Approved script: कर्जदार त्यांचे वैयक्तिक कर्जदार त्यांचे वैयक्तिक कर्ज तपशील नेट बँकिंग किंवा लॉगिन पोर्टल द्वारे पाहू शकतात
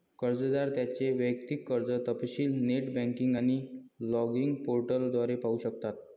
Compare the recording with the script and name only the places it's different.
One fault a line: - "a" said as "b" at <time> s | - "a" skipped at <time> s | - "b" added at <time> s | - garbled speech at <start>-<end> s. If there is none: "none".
- "कर्जदार त्यांचे वैयक्तिक" skipped at 1.7 s
- "किंवा" said as "आणि" at 3.3 s